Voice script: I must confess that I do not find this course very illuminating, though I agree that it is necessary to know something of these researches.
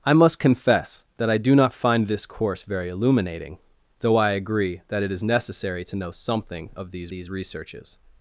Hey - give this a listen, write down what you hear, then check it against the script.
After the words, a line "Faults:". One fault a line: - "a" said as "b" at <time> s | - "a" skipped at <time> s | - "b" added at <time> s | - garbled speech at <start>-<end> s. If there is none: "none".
I must confess that I do not find this course very illuminating, though I agree that it is necessary to know something of these these researches.
Faults:
- "these" added at 7.1 s